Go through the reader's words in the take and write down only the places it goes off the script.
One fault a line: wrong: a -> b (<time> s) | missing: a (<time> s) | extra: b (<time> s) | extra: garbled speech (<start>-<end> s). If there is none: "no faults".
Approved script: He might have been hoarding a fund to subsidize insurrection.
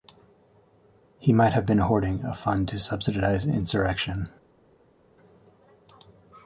no faults